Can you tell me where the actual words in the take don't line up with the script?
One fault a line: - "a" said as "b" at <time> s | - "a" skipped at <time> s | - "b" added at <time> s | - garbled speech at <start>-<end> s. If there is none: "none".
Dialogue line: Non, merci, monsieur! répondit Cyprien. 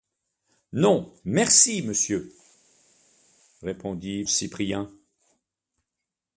none